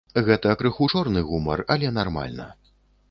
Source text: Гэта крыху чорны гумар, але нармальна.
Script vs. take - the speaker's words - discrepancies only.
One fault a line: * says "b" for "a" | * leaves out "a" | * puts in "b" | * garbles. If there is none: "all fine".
all fine